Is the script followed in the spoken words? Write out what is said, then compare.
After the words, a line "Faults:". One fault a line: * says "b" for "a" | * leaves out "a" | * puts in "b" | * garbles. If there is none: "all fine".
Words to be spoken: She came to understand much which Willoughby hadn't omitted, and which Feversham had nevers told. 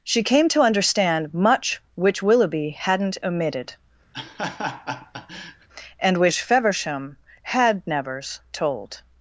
She came to understand much which Willoughby hadn't omitted, and which Feversham had nevers told.
Faults:
all fine